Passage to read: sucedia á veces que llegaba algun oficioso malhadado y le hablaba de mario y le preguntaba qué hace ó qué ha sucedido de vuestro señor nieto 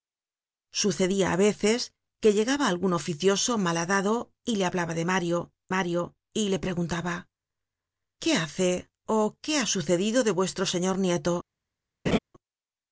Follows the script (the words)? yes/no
no